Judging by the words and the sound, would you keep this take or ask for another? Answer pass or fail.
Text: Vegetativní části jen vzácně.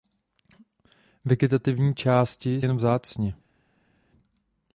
pass